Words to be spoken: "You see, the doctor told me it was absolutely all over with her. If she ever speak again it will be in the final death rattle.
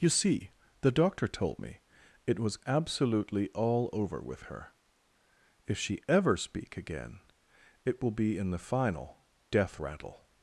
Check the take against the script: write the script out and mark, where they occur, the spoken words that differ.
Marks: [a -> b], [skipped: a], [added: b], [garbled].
"You see, the doctor told me it was absolutely all over with her. If she ever speak again it will be in the final death rattle.